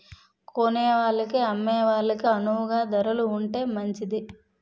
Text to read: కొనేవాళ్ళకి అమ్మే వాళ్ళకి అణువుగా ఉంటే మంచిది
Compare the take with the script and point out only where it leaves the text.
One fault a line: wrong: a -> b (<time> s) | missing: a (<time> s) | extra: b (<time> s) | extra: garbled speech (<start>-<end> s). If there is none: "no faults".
extra: ధరలు (2.9 s)